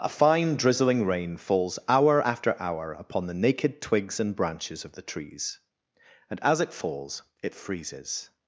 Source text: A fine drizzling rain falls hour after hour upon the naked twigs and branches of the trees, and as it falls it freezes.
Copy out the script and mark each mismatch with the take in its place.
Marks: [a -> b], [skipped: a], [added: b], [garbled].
A fine drizzling rain falls hour after hour upon the naked twigs and branches of the trees, and as it falls it freezes.